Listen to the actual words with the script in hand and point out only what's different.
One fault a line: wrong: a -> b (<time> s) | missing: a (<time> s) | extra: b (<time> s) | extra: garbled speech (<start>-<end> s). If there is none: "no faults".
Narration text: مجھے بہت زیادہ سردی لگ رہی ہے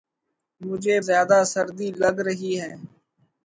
missing: بہت (0.9 s)